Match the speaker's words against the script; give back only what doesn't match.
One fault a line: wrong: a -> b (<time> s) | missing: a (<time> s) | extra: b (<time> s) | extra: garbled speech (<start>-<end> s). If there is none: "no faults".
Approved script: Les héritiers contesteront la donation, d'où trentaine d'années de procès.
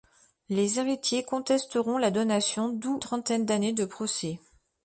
no faults